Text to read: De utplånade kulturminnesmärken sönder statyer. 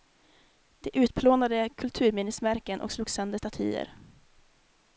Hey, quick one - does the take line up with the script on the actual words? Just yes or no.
no